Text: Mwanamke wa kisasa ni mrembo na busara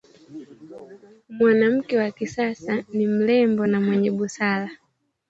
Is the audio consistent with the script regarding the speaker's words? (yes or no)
no